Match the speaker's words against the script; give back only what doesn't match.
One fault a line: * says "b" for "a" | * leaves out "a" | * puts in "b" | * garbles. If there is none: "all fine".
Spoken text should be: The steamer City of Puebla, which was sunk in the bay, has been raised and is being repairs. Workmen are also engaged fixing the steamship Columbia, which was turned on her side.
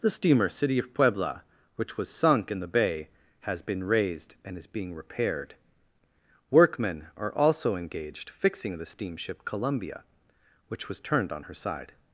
* says "repaired" for "repairs"